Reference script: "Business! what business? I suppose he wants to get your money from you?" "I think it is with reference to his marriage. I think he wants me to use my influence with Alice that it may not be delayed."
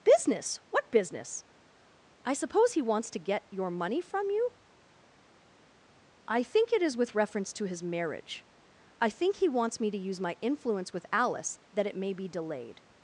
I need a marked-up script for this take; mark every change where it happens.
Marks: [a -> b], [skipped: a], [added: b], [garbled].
"Business! what business? I suppose he wants to get your money from you?" "I think it is with reference to his marriage. I think he wants me to use my influence with Alice that it may [skipped: not] be delayed."